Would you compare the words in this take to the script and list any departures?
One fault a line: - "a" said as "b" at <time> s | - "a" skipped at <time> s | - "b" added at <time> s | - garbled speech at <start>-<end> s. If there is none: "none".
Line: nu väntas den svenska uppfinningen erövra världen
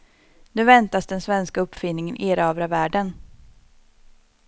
none